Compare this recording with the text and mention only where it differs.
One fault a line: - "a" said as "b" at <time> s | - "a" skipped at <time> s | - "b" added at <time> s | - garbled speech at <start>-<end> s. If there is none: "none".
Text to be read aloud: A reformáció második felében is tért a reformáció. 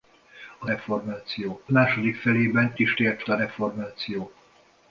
none